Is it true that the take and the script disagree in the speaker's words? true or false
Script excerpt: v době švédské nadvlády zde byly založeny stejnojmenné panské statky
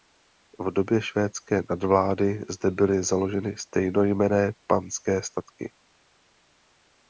false